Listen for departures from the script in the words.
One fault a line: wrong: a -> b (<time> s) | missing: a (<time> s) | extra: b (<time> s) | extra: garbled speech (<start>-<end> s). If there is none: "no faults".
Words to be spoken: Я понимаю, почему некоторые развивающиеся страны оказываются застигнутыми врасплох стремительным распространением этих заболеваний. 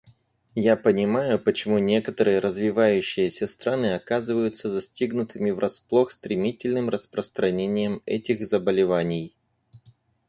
no faults